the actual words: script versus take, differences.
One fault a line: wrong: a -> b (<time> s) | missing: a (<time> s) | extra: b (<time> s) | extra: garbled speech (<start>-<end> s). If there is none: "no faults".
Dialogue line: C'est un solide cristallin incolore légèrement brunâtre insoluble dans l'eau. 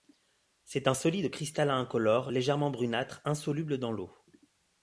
no faults